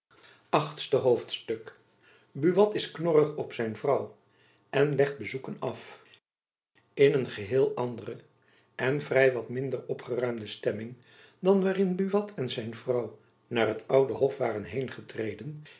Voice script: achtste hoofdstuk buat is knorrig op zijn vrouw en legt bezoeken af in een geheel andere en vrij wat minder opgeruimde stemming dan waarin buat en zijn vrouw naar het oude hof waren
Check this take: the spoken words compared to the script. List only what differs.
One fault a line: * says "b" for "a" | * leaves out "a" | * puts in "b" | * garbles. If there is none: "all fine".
all fine